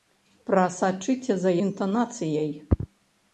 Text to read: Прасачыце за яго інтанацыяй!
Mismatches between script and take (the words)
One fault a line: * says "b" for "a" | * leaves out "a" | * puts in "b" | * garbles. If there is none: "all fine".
* leaves out "яго"